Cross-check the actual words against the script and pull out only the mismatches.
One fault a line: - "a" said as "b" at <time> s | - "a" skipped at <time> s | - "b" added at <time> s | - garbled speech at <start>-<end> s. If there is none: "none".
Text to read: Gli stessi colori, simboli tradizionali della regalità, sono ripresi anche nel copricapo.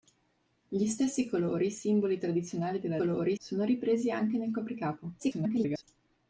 - "regalità" said as "colori" at 2.9 s
- garbled speech at 5.2-5.8 s